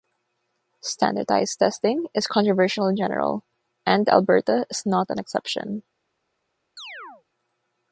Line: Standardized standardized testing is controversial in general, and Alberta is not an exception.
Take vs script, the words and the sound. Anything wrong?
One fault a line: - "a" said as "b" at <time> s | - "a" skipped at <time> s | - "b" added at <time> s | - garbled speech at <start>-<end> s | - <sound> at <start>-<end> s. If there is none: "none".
- "standardized" skipped at 1.6 s
- chirp at 6.8-7.2 s